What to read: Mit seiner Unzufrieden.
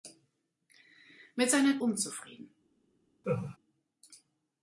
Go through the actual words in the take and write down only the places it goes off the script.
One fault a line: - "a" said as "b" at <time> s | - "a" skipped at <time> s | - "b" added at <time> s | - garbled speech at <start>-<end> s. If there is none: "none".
none